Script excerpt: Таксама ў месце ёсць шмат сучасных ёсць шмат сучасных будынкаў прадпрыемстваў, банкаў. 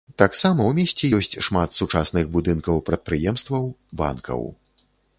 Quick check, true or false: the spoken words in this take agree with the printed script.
false